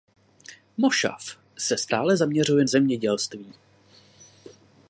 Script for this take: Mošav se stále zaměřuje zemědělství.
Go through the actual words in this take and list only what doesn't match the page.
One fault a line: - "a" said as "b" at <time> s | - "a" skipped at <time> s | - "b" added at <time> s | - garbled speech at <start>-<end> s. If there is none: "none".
none